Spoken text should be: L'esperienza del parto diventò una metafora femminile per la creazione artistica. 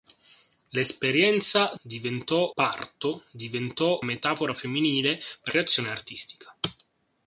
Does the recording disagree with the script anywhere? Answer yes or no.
yes